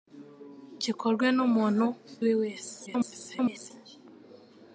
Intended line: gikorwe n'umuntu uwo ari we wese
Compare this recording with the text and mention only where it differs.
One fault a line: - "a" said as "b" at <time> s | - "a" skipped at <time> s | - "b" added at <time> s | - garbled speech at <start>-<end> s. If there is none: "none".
- "uwo ari" skipped at 1.9 s
- garbled speech at 2.9-3.7 s